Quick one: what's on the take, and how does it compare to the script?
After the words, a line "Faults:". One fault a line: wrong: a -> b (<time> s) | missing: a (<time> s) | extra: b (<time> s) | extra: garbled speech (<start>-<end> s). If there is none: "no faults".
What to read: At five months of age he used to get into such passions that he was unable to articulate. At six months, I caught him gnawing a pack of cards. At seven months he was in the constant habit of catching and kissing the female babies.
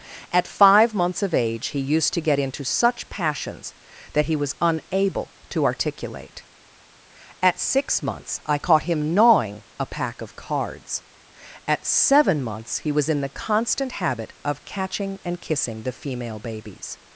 At five months of age he used to get into such passions that he was unable to articulate. At six months, I caught him gnawing a pack of cards. At seven months he was in the constant habit of catching and kissing the female babies.
Faults:
no faults